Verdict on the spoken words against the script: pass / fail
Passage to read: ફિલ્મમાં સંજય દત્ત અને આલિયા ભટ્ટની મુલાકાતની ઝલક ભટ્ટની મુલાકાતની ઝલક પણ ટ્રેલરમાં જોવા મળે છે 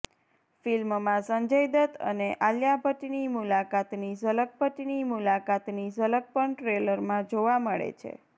pass